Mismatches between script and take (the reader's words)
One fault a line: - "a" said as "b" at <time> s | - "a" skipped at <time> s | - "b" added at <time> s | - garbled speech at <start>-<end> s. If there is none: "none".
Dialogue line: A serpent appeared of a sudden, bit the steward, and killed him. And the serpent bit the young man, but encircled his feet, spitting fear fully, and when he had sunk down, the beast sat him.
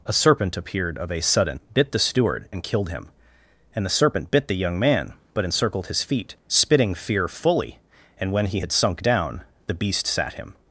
none